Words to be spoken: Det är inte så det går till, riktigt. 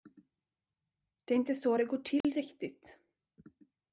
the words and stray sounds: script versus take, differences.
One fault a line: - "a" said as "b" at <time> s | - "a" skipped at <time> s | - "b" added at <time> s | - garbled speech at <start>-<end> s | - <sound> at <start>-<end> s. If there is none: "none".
- dropout at 2.2-2.2 s